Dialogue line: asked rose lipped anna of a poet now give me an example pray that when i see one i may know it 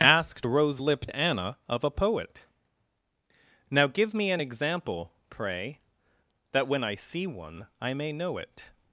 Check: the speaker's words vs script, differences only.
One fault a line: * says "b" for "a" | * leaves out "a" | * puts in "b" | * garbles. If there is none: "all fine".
all fine